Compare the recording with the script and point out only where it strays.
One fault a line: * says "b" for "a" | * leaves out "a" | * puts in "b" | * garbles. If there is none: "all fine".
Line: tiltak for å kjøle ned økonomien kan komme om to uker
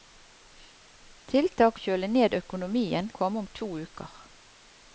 * leaves out "for"
* leaves out "kan"